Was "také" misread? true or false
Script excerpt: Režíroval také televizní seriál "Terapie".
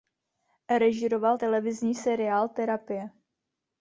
true